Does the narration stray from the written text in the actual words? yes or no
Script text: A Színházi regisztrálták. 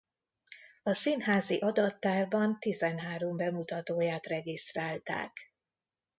yes